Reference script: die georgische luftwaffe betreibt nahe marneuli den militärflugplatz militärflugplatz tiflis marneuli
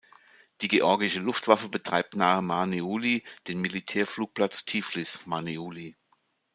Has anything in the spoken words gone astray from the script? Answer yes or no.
yes